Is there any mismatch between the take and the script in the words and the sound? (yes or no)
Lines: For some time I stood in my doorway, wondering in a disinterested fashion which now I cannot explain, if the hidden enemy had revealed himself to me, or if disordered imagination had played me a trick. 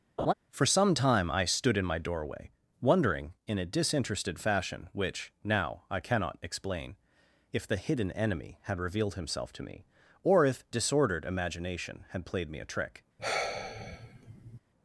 yes